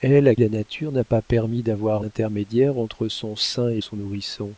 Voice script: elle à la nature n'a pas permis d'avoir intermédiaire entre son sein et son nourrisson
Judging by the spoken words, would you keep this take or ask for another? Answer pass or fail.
pass